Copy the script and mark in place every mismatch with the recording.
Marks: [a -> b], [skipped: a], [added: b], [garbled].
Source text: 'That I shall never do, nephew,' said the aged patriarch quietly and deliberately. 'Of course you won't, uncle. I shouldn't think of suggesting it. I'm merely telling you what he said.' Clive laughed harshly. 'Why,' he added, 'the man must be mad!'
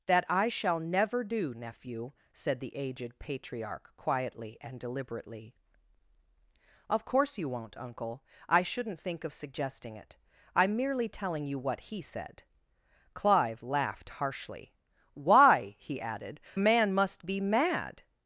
'That I shall never do, nephew,' said the aged patriarch quietly and deliberately. 'Of course you won't, uncle. I shouldn't think of suggesting it. I'm merely telling you what he said.' Clive laughed harshly. 'Why,' he added, [skipped: 'the] man must be mad!'